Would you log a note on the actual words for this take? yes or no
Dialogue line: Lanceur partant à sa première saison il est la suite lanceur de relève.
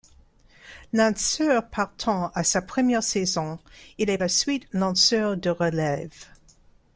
no